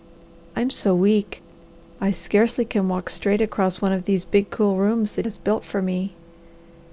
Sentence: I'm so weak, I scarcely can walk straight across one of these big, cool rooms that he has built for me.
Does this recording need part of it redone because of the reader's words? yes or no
yes